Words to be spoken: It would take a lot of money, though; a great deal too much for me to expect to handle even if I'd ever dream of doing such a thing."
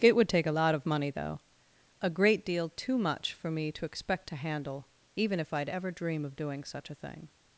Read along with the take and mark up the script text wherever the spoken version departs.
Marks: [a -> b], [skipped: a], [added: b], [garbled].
It would take a lot of money, though; a great deal too much for me to expect to handle even if I'd ever dream of doing such a thing."